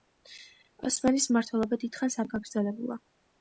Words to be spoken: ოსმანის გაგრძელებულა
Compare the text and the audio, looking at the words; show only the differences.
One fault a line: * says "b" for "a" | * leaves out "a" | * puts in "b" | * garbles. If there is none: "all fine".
* puts in "მმართველობა დიდხანს არ"